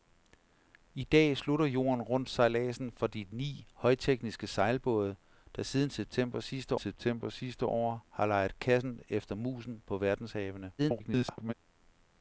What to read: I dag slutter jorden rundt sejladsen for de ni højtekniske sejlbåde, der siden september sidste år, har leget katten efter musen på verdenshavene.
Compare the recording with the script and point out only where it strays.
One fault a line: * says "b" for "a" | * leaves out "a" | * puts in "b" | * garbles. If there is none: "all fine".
* puts in "september sidste"
* garbles